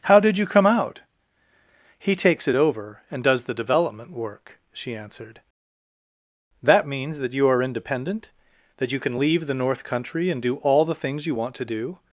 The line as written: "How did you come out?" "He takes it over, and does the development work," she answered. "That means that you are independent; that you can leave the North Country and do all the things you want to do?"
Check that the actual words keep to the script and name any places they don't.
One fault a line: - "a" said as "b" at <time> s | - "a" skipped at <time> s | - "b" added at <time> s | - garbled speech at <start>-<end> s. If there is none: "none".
none